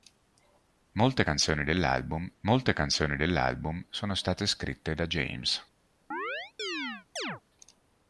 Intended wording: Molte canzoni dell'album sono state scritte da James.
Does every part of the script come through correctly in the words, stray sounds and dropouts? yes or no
no